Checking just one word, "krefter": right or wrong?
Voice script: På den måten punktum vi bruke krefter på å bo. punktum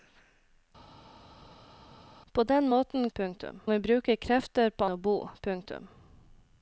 right